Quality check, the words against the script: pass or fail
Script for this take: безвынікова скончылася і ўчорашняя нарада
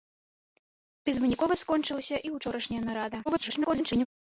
fail